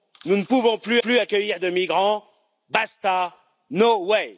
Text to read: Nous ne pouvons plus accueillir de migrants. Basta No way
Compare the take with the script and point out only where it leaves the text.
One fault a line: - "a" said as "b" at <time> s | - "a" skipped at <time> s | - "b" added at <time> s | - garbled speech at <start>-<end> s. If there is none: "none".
- "plus" added at 1.0 s